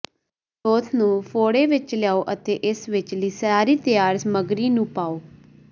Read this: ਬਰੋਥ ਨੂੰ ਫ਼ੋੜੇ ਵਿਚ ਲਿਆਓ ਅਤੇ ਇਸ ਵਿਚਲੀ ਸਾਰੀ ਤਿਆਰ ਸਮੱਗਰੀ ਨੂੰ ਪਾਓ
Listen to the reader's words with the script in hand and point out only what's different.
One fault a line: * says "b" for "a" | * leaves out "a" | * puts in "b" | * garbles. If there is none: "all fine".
all fine